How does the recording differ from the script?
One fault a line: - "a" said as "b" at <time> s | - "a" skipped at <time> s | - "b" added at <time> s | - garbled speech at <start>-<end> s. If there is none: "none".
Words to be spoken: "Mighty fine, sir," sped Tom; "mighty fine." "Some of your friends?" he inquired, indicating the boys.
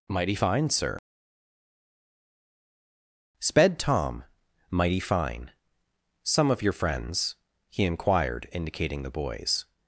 none